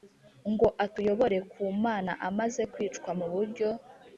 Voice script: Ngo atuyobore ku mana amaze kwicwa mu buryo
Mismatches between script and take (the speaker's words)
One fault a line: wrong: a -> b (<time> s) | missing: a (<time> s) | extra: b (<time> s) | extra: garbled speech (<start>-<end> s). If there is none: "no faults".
no faults